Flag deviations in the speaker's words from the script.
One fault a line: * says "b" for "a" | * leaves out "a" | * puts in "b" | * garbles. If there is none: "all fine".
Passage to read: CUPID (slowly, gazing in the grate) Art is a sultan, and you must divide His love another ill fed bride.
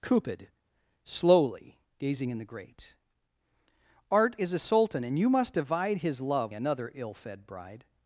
all fine